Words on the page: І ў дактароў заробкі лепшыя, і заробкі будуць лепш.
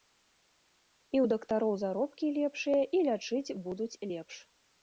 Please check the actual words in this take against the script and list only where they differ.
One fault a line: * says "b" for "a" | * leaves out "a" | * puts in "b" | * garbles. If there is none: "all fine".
* says "лячыць" for "заробкі"